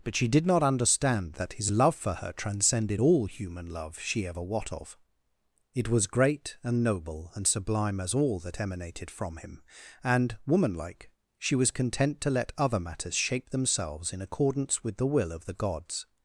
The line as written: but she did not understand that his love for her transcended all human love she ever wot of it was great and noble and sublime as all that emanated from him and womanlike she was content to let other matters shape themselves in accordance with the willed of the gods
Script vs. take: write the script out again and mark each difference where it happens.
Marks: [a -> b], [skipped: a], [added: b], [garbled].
but she did not understand that his love for her transcended all human love she ever wot of it was great and noble and sublime as all that emanated from him and womanlike she was content to let other matters shape themselves in accordance with the [willed -> will] of the gods